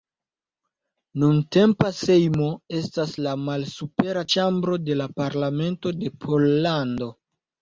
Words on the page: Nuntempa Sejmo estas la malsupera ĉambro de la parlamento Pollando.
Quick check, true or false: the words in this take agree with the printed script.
false